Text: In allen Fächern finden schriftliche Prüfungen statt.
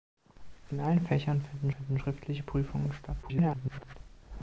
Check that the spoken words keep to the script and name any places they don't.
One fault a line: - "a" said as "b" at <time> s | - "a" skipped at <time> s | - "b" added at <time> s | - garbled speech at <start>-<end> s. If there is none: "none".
- "finden" added at 1.7 s
- garbled speech at 3.2-3.9 s